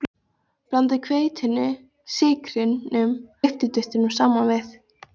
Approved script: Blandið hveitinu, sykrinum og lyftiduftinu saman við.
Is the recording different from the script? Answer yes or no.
yes